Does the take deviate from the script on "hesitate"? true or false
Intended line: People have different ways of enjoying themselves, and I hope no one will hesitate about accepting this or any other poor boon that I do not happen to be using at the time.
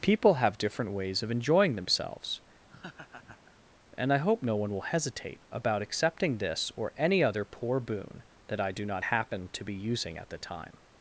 false